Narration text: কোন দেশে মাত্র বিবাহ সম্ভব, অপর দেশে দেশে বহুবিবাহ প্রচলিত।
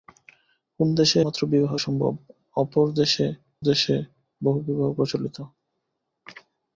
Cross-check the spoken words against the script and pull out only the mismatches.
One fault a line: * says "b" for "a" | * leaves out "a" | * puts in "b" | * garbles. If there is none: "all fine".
all fine